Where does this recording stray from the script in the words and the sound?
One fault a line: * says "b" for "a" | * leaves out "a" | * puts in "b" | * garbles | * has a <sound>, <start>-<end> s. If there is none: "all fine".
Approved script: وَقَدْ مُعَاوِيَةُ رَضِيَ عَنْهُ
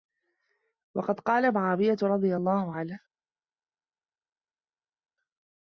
* puts in "قَالَ"
* puts in "اللَّهُ"